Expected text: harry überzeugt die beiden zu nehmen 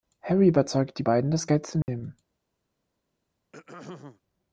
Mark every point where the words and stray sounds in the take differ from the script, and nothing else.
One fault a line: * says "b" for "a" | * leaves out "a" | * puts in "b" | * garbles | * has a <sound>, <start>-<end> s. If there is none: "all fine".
* puts in "das geld"
* has a dropout, 1.8-1.9 s
* has a throat clearing, 3.5-4.2 s